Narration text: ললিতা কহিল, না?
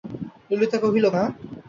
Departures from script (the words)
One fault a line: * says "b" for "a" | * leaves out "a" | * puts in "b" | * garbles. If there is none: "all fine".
all fine